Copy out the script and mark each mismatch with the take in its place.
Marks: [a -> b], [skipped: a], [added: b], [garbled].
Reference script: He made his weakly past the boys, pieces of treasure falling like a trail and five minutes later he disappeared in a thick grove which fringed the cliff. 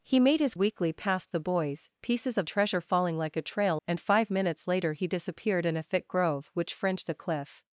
He made his weakly past the boys, pieces of treasure falling like a trail and five minutes later he disappeared in a thick grove which fringed the cliff.